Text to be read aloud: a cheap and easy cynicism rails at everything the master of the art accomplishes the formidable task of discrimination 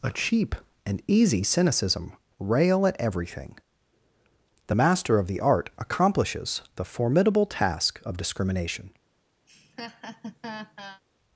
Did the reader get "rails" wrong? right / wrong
wrong